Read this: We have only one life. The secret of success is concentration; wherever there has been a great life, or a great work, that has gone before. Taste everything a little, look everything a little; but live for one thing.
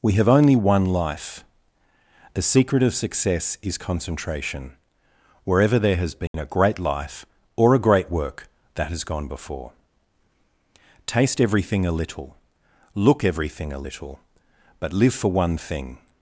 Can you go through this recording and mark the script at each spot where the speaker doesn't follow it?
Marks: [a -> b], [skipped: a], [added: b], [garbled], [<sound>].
We have only one life. The secret of success is concentration; wherever there has been [dropout] a great life, or a great work, that has gone before. Taste everything a little, look everything a little; but live for one thing.